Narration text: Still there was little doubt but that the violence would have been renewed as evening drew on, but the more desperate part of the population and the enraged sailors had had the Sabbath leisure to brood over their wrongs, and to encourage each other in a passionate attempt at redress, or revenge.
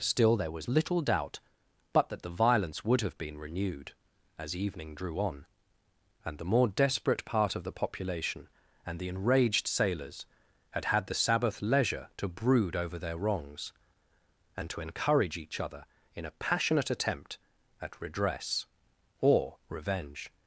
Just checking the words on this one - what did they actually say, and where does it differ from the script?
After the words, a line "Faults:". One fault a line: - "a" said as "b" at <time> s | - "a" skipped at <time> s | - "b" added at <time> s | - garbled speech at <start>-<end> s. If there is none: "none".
Still there was little doubt but that the violence would have been renewed as evening drew on, and the more desperate part of the population and the enraged sailors had had the Sabbath leisure to brood over their wrongs, and to encourage each other in a passionate attempt at redress, or revenge.
Faults:
- "but" said as "and" at 6.2 s